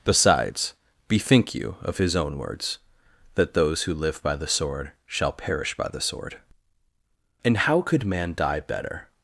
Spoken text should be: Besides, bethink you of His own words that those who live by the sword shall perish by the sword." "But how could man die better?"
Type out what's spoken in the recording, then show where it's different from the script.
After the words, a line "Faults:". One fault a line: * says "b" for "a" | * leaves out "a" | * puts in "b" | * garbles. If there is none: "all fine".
Besides, bethink you of His own words that those who live by the sword shall perish by the sword." "And how could man die better?"
Faults:
* says "And" for "But"